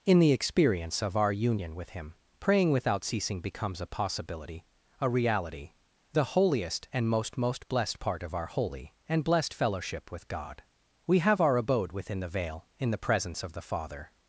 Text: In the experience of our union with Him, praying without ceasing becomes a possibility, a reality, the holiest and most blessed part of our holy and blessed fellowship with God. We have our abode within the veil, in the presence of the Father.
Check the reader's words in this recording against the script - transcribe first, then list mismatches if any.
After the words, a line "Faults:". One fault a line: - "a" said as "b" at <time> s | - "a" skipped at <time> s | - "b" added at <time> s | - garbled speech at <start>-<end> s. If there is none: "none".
In the experience of our union with Him, praying without ceasing becomes a possibility, a reality, the holiest and most most blessed part of our holy and blessed fellowship with God. We have our abode within the veil, in the presence of the Father.
Faults:
- "most" added at 7.4 s